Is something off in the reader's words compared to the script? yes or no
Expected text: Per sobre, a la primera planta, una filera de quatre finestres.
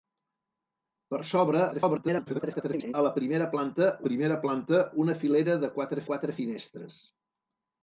yes